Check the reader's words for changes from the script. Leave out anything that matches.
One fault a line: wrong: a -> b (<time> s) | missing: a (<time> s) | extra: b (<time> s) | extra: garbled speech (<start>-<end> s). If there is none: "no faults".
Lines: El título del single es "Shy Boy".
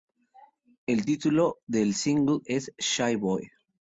no faults